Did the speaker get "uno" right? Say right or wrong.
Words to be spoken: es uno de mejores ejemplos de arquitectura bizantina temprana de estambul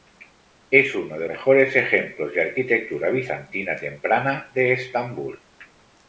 right